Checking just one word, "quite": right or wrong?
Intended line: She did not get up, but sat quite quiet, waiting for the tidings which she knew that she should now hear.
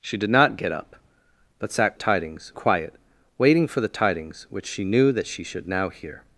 wrong